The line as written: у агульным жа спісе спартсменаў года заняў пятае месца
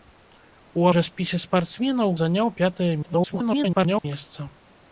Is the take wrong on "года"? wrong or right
wrong